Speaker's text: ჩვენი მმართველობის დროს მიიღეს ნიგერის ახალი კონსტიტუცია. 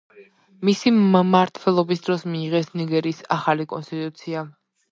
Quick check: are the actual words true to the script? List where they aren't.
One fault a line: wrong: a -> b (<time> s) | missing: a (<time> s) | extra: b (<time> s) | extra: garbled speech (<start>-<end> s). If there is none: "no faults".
wrong: ჩვენი -> მისი (0.7 s)